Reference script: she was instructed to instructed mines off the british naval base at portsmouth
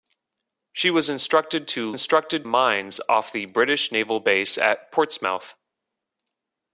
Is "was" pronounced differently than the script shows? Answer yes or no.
no